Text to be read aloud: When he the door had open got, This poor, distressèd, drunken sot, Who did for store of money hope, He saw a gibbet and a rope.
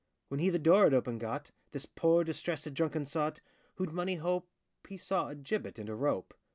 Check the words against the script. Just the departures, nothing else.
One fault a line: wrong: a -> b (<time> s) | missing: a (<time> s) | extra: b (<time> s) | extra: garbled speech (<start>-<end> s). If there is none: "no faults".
missing: did for store (3.9 s)